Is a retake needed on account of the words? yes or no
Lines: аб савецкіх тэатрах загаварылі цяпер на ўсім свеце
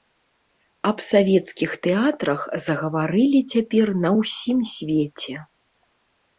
no